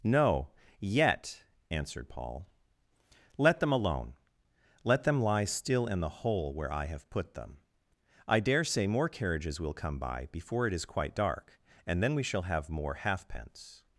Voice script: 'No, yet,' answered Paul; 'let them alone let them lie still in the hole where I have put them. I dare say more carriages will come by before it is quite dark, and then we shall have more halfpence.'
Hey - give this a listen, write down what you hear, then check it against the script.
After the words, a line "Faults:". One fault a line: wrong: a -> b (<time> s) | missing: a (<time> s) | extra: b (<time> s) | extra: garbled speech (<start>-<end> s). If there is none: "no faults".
'No, yet,' answered Paul; 'let them alone let them lie still in the hole where I have put them. I dare say more carriages will come by before it is quite dark, and then we shall have more halfpence.'
Faults:
no faults